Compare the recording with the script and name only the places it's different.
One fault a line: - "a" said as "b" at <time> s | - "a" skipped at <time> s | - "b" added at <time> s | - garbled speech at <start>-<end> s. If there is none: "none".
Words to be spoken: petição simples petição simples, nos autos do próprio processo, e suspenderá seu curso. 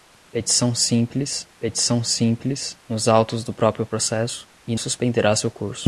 none